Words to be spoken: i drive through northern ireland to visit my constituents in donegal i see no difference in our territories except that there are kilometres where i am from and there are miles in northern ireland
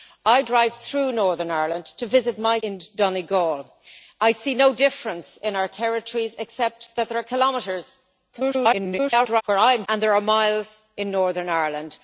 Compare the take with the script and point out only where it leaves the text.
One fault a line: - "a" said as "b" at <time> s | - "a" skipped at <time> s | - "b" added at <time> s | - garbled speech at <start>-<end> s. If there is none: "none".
- "constituents" skipped at 2.6 s
- garbled speech at 8.3-9.4 s
- "from" skipped at 9.8 s